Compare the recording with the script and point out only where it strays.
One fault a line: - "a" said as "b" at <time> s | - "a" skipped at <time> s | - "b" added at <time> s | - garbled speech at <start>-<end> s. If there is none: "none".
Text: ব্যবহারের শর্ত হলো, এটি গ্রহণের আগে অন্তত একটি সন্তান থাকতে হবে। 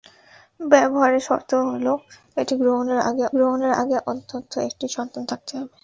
- "গ্রহণের আগে" added at 3.4 s